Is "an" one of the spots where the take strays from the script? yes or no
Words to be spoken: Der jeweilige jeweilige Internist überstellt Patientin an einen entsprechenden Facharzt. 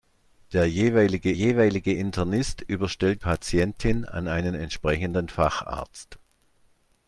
no